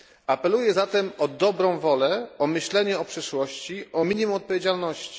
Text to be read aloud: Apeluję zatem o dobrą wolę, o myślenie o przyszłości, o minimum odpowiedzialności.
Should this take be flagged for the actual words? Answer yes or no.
no